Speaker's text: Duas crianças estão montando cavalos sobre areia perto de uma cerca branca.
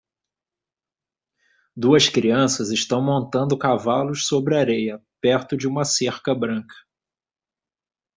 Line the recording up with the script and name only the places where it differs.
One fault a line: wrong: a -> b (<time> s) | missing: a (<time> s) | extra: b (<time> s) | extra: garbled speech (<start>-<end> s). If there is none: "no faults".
no faults